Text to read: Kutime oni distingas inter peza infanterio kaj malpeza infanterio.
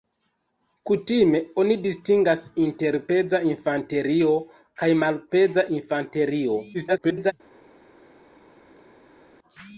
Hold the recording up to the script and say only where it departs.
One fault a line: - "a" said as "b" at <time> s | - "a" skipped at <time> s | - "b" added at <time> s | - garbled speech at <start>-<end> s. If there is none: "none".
- garbled speech at 6.7-7.3 s